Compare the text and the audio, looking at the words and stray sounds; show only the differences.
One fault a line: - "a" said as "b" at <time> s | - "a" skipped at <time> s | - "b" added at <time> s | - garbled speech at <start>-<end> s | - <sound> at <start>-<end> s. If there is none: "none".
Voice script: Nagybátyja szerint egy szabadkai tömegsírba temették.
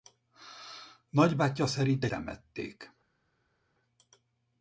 - "szabadkai tömegsírba" skipped at 2.1 s